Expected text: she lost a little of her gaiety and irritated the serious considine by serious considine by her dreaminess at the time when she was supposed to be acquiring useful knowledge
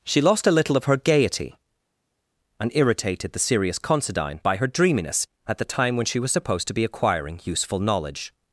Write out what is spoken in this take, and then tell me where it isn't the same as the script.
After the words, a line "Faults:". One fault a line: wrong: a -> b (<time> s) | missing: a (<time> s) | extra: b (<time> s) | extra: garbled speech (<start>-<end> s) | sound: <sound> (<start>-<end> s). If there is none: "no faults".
she lost a little of her gaiety and irritated the serious considine by her dreaminess at the time when she was supposed to be acquiring useful knowledge
Faults:
missing: serious considine by (4.6 s)